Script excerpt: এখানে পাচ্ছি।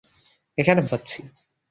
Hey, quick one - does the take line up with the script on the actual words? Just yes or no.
yes